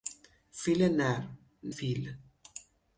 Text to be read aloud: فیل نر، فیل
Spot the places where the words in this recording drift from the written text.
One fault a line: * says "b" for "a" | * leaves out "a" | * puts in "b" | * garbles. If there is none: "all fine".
all fine